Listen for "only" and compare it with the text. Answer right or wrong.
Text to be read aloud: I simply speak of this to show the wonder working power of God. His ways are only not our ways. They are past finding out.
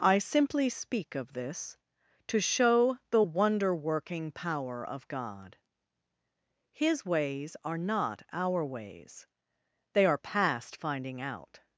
wrong